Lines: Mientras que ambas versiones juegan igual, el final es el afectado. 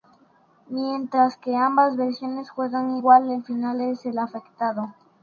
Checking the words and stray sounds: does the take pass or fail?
pass